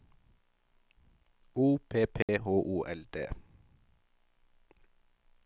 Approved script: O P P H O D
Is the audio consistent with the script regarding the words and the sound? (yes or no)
no